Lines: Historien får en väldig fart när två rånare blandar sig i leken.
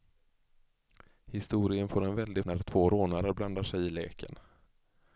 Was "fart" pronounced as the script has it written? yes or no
no